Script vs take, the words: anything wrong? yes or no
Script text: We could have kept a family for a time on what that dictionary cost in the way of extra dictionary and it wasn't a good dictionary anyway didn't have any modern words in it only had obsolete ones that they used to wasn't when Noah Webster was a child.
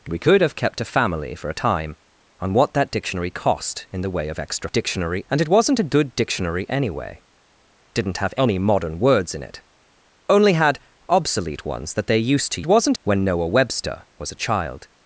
no